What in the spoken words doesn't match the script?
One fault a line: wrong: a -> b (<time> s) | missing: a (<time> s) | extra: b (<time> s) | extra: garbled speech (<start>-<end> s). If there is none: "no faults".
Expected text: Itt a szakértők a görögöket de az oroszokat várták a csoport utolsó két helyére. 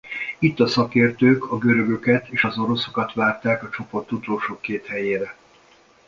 wrong: de -> és (2.2 s)